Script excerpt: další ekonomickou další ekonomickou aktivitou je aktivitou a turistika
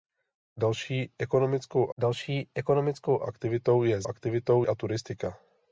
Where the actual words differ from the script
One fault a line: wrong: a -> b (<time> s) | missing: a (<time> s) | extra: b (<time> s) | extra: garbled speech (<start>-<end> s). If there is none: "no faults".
no faults